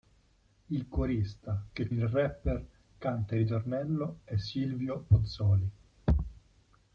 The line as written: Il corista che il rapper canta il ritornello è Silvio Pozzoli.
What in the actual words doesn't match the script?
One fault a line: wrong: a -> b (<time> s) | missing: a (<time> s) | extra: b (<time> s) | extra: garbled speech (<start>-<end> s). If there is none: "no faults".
no faults